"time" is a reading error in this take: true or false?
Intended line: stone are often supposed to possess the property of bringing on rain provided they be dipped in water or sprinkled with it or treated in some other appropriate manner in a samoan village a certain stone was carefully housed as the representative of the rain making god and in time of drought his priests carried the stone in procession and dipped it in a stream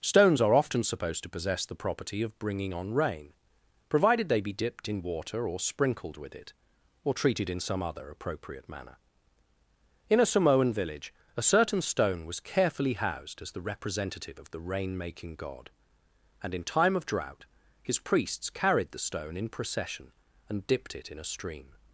false